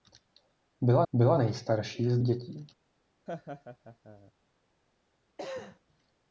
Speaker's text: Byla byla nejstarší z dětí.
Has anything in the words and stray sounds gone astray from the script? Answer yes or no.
yes